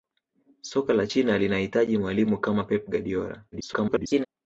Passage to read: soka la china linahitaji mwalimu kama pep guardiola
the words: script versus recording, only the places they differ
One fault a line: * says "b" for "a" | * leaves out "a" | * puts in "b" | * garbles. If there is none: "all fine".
* garbles